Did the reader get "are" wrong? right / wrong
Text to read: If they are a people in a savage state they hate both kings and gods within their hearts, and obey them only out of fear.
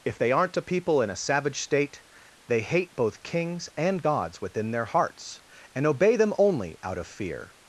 wrong